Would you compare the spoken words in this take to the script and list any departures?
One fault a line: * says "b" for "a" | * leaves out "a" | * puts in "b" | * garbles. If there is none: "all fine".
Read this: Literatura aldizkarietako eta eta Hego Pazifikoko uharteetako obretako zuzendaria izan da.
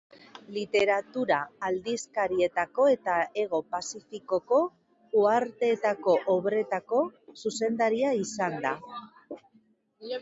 * leaves out "eta"